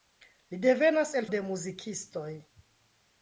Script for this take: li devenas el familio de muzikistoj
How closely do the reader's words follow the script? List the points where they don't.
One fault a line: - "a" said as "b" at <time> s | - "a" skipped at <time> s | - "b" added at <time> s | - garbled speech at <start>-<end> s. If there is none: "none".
- "familio" skipped at 1.3 s